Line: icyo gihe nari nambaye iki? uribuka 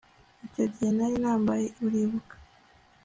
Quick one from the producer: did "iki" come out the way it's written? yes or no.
no